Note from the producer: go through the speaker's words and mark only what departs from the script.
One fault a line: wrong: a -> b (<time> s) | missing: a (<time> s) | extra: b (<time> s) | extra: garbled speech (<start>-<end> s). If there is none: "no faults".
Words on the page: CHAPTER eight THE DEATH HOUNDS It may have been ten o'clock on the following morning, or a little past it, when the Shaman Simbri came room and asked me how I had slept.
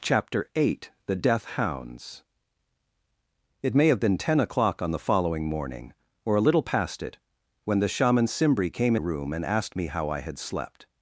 no faults